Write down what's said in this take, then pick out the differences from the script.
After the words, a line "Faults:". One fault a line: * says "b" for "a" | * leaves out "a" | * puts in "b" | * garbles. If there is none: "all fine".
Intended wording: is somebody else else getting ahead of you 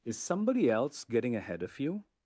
is somebody else getting ahead of you
Faults:
* leaves out "else"